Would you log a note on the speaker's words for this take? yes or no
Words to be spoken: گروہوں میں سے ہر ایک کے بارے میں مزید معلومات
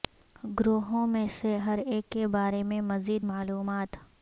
no